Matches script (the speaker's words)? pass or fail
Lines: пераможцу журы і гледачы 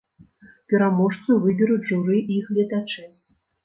fail